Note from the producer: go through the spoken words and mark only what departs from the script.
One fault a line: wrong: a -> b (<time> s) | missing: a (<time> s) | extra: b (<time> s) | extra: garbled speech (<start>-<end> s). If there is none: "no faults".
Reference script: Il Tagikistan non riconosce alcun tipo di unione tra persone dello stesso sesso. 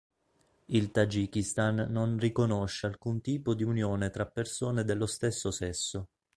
no faults